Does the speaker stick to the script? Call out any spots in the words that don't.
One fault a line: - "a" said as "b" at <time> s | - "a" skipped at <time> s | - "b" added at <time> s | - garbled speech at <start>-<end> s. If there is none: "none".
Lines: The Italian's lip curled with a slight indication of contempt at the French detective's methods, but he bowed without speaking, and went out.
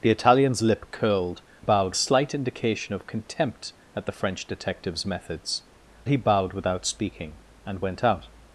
- "with" said as "bowed" at 1.6 s
- "but" skipped at 5.6 s